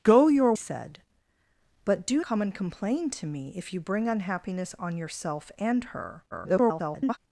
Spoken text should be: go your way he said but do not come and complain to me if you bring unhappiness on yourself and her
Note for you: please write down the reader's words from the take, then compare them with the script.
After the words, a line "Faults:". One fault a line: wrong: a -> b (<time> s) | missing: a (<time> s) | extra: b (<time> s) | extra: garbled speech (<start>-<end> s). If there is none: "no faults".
go your said but do come and complain to me if you bring unhappiness on yourself and her [garbled]
Faults:
missing: way he (0.5 s)
missing: not (2.2 s)
extra: garbled speech (6.3-7.2 s)